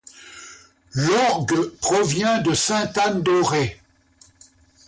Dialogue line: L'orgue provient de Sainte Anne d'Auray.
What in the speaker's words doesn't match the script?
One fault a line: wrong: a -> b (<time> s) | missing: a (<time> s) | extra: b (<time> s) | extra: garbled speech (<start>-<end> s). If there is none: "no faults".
no faults